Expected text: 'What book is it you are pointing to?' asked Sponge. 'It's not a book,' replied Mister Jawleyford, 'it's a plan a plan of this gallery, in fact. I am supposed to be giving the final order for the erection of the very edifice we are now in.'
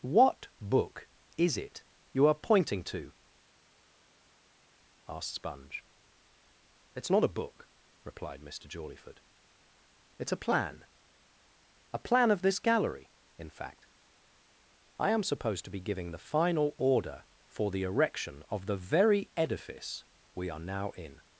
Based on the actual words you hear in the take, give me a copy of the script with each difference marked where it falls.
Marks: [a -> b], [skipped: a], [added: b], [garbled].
'What book is it you are pointing to?' asked Sponge. 'It's not a book,' replied Mister Jawleyford, 'it's a plan a plan of this gallery, in fact. I am supposed to be giving the final order for the erection of the very edifice we are now in.'